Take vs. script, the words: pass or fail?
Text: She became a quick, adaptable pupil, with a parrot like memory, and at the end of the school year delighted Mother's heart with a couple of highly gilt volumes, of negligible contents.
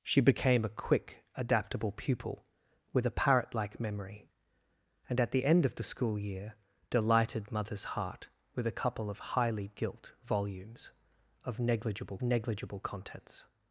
fail